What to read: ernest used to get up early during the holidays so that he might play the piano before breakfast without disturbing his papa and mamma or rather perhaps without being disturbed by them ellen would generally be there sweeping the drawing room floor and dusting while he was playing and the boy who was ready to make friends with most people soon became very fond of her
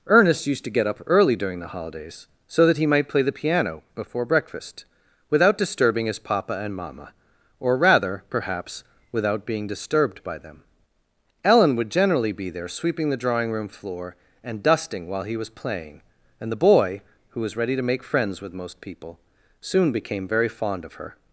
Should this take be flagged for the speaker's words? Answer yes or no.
no